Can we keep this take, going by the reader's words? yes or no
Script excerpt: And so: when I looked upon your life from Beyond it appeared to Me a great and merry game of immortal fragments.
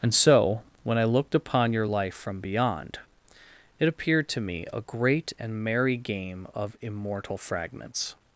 yes